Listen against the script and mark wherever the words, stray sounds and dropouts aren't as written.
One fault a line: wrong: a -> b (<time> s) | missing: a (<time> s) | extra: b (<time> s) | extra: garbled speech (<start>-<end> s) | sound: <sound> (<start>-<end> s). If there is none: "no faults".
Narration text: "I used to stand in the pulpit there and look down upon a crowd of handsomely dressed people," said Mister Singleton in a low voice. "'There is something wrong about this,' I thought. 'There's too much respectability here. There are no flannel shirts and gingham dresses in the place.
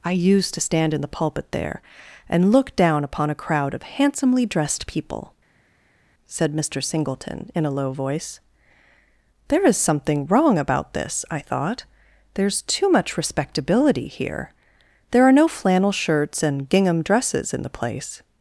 no faults